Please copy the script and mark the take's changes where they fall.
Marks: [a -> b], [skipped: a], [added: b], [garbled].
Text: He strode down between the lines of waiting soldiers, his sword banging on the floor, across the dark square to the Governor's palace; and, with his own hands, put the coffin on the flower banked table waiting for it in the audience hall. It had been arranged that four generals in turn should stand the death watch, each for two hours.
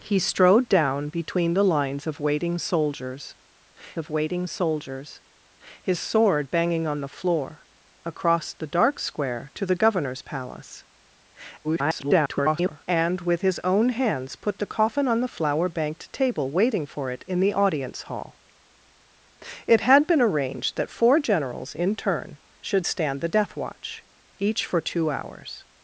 He strode down between the lines of waiting soldiers, [added: of waiting soldiers] his sword banging on the floor, across the dark square to the Governor's palace; [garbled] and, with his own hands, put the coffin on the flower banked table waiting for it in the audience hall. It had been arranged that four generals in turn should stand the death watch, each for two hours.